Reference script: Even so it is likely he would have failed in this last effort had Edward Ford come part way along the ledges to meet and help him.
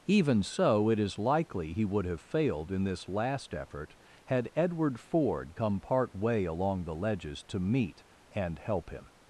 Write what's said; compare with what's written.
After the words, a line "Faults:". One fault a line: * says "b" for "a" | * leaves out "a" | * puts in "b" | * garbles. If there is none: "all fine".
Even so it is likely he would have failed in this last effort had Edward Ford come part way along the ledges to meet and help him.
Faults:
all fine